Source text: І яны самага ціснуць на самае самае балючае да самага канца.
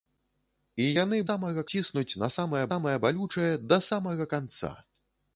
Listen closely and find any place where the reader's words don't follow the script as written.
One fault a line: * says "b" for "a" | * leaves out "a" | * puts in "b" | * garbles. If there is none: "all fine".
all fine